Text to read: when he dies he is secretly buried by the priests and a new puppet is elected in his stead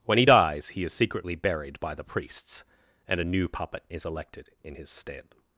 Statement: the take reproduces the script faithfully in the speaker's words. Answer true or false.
true